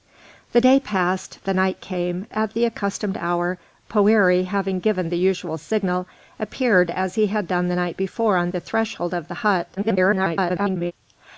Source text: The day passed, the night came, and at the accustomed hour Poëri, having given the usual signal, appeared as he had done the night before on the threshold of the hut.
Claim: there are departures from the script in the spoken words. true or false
true